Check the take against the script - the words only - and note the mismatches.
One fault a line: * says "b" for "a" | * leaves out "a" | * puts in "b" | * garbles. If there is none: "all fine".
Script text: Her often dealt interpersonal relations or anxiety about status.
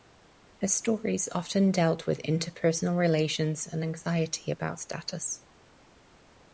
* puts in "stories"
* puts in "with"
* says "and" for "or"